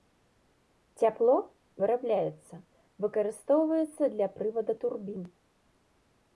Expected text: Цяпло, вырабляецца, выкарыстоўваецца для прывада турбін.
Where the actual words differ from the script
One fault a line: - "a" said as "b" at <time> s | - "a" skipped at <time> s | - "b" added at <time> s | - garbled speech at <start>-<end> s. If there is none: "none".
none